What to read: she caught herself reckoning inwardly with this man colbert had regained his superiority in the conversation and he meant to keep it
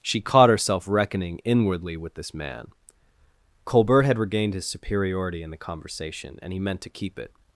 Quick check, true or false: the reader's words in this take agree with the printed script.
true